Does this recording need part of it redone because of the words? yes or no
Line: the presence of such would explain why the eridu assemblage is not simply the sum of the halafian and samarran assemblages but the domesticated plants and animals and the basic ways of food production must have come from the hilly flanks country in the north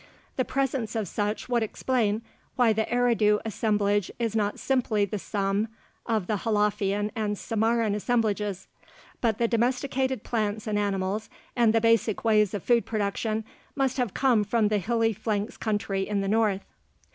no